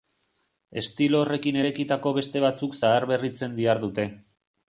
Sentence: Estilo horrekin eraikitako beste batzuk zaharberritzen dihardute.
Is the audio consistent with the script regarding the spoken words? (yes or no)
yes